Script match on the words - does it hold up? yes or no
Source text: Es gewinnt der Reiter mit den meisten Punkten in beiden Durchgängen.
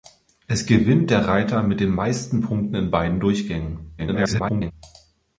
no